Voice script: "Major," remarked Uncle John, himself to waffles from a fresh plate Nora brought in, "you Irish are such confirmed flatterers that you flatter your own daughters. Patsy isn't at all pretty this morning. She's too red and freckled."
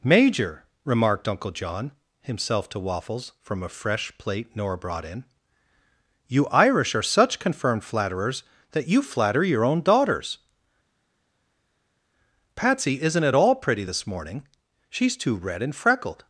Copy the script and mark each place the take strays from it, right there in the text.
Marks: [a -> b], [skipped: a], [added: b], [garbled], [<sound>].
"Major," remarked Uncle John, himself to waffles from a fresh plate Nora brought in, "you Irish are such confirmed flatterers that you flatter your own daughters. Patsy isn't at all pretty this morning. She's too red and freckled."